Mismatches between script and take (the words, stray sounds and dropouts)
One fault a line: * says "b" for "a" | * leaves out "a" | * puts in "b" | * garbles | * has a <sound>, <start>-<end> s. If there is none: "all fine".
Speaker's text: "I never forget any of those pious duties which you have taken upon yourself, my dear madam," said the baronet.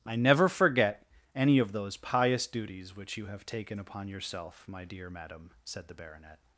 all fine